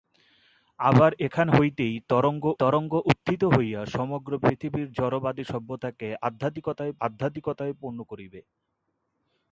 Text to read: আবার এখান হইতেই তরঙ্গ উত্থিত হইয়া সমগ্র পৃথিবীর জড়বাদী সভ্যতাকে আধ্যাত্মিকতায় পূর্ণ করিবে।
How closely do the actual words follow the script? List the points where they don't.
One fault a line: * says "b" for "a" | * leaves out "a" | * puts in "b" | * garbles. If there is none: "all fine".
* puts in "তরঙ্গ"
* puts in "আধ্যাত্মিকতায়"